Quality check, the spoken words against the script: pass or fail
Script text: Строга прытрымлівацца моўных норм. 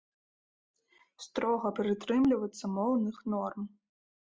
pass